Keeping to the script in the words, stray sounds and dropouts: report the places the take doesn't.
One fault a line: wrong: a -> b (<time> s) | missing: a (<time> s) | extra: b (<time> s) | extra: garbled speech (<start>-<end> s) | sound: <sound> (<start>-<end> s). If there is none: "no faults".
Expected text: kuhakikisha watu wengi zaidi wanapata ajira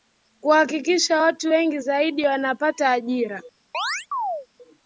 sound: chirp (3.7-4.5 s)